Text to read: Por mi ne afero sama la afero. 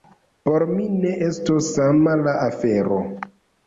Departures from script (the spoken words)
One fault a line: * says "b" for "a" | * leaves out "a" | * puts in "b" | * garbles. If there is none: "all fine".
* says "estos" for "afero"